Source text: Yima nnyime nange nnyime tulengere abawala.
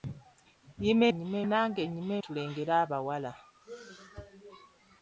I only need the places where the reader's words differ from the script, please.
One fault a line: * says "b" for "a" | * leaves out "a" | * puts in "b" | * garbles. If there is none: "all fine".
all fine